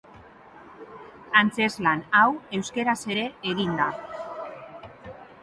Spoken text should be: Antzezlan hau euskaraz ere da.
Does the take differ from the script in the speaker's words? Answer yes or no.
yes